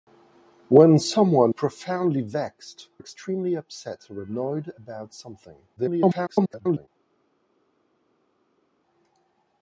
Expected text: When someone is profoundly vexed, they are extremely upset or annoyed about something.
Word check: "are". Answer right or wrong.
wrong